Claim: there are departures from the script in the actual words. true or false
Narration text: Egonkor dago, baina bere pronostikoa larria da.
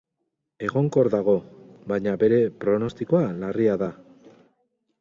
false